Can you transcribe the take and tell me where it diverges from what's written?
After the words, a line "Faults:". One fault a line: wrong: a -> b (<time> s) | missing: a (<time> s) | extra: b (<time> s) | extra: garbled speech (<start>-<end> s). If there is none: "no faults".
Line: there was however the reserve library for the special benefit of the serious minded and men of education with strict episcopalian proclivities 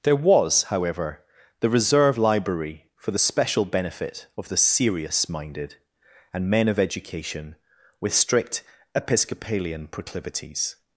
there was however the reserve library for the special benefit of the serious minded and men of education with strict episcopalian proclivities
Faults:
no faults